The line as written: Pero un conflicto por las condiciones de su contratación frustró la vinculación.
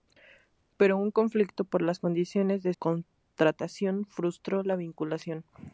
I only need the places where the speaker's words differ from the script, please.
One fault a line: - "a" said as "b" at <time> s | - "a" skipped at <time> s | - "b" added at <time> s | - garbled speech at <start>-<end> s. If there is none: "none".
- "su" skipped at 2.7 s